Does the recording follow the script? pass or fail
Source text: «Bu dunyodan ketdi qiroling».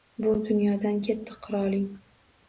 pass